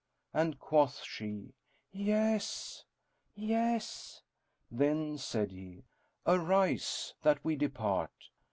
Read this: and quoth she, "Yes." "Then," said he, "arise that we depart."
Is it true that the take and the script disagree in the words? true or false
true